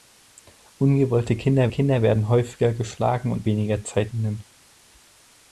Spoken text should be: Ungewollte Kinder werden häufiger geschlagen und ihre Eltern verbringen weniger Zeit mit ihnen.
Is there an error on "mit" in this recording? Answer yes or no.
yes